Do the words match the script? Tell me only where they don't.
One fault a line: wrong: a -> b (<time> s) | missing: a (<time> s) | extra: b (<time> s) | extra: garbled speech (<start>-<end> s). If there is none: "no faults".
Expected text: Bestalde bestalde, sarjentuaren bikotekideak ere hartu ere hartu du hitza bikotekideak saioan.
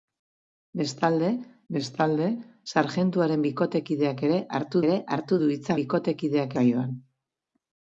no faults